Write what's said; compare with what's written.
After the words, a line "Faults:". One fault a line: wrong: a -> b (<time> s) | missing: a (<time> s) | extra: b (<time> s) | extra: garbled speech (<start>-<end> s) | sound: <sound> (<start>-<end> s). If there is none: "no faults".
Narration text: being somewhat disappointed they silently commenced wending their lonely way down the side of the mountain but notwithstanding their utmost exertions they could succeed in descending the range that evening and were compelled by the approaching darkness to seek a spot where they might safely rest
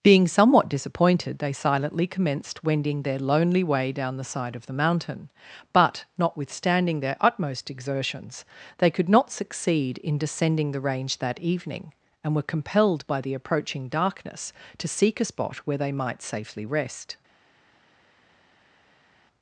being somewhat disappointed they silently commenced wending their lonely way down the side of the mountain but notwithstanding their utmost exertions they could not succeed in descending the range that evening and were compelled by the approaching darkness to seek a spot where they might safely rest
Faults:
extra: not (9.1 s)